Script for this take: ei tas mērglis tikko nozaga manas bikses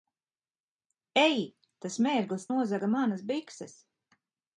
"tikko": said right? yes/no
no